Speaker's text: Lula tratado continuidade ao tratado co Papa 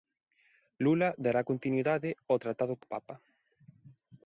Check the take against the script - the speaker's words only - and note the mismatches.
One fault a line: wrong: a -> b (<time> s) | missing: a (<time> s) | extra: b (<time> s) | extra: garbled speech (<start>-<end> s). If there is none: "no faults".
wrong: tratado -> dará (1.2 s)